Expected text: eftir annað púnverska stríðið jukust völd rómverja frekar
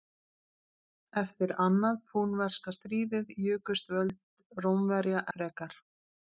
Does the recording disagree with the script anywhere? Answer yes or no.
no